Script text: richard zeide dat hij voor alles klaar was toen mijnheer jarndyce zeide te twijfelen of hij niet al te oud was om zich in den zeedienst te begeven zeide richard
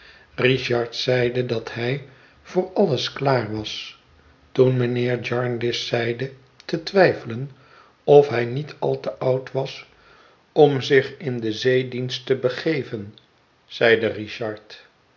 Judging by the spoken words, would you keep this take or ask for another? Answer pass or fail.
pass